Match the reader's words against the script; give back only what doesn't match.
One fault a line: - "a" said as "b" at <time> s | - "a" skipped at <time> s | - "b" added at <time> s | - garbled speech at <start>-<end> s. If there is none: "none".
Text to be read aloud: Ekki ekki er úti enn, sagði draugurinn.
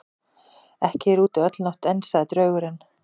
- "ekki" skipped at 1.1 s
- "öll nótt" added at 1.5 s